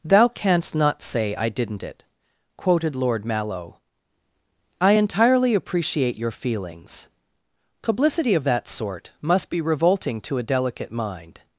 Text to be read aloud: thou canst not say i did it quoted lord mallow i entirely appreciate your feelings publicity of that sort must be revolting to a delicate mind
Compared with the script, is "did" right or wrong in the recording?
wrong